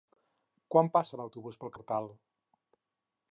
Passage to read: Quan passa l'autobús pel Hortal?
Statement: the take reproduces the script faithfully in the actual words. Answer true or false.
true